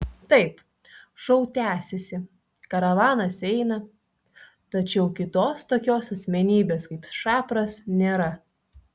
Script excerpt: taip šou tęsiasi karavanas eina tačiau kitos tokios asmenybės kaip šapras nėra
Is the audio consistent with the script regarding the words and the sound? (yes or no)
yes